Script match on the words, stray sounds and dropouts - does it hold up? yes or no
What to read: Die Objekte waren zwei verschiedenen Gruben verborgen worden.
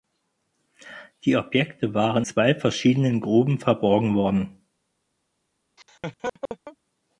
no